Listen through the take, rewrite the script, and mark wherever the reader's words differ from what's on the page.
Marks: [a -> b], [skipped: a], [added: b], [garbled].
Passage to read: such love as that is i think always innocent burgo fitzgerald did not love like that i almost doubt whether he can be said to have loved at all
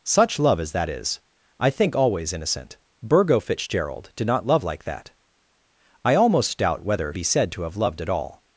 such love as that is i think always innocent burgo fitzgerald did not love like that i almost doubt whether [skipped: he can] be said to have loved at all